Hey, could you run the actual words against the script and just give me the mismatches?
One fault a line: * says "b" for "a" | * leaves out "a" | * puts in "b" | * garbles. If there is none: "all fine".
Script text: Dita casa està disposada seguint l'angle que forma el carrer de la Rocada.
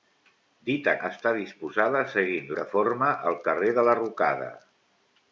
* leaves out "casa"
* leaves out "l'angle"